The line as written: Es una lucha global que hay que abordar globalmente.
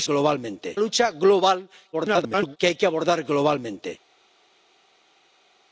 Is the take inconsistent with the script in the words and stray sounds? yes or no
yes